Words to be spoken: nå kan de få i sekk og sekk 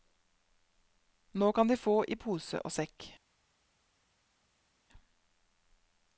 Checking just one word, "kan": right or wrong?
right